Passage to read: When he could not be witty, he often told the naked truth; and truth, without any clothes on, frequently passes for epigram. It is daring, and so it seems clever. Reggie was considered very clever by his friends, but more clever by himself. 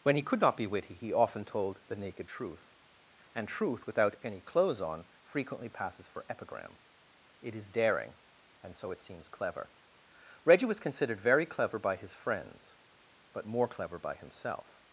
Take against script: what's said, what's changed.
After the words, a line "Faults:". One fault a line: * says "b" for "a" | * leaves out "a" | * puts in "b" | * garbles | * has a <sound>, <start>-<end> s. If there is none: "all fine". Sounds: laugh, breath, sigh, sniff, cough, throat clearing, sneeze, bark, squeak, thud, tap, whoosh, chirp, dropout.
When he could not be witty, he often told the naked truth; and truth, without any clothes on, frequently passes for epigram. It is daring, and so it seems clever. Reggie was considered very clever by his friends, but more clever by himself.
Faults:
all fine